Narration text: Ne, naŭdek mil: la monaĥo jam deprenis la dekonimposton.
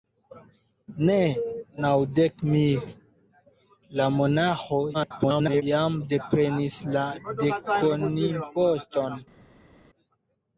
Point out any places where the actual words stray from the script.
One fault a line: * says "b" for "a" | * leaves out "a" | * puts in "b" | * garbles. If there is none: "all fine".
* garbles